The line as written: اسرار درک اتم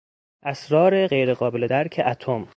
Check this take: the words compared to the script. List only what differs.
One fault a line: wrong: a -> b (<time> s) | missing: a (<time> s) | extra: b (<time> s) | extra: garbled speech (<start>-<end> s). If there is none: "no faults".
extra: غیرقابل (1.0 s)